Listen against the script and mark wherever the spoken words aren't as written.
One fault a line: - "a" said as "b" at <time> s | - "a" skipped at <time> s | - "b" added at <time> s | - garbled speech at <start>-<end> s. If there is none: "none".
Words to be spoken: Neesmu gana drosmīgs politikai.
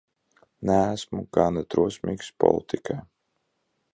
none